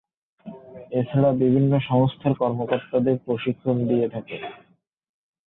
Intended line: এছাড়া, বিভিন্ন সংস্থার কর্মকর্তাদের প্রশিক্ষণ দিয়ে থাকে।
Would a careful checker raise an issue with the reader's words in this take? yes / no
no